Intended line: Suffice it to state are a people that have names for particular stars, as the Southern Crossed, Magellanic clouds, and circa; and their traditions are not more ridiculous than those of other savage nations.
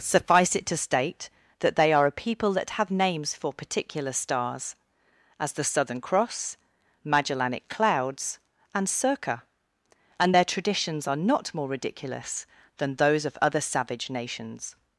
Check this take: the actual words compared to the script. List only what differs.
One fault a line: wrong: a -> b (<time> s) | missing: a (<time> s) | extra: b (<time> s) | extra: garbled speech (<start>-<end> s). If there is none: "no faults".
extra: that they (1.6 s)
wrong: Crossed -> Cross (6.0 s)